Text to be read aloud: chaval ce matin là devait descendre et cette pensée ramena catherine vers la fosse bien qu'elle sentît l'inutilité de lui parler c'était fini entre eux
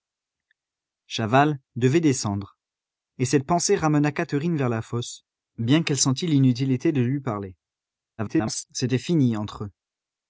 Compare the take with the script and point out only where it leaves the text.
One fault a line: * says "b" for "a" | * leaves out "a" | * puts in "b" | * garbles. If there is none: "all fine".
* leaves out "ce matin là"
* garbles